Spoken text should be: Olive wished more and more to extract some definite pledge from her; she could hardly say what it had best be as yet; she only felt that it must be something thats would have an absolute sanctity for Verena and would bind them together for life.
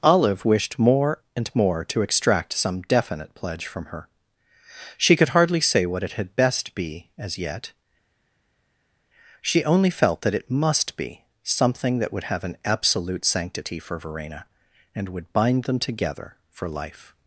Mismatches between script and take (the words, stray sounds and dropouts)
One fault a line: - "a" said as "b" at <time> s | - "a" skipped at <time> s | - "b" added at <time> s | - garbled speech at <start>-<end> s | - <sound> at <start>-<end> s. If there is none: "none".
- "thats" said as "that" at 12.0 s